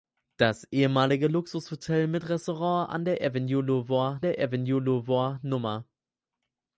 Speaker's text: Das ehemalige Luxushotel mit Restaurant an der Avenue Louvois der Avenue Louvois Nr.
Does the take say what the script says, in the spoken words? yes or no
yes